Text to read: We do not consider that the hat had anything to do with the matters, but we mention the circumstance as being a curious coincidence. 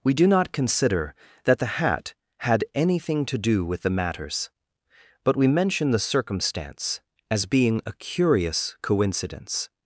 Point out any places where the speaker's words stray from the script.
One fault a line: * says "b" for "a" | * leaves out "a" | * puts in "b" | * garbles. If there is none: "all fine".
all fine